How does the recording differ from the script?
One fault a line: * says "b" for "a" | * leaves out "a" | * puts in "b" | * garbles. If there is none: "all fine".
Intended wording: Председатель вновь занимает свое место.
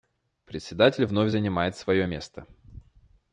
all fine